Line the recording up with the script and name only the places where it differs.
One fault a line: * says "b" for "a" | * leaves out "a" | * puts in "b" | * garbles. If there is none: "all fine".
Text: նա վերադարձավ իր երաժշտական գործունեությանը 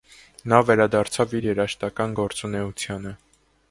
all fine